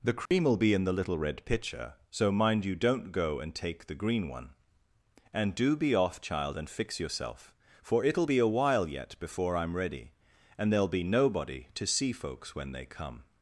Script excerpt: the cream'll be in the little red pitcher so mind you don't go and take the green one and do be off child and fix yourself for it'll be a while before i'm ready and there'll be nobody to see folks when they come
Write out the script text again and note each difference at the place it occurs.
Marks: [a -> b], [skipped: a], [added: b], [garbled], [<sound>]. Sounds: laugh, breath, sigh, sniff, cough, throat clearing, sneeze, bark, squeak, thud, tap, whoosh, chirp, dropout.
the cream'll [dropout] be in the little red pitcher so mind you don't go and take the green one and do be off child and fix yourself for it'll be a while [added: yet] before i'm ready and there'll be nobody to see folks when they come